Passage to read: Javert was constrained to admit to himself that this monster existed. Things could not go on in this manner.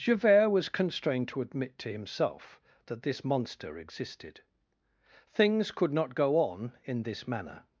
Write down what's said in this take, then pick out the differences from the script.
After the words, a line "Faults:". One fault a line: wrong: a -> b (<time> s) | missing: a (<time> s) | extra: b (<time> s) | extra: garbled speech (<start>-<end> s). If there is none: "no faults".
Javert was constrained to admit to himself that this monster existed. Things could not go on in this manner.
Faults:
no faults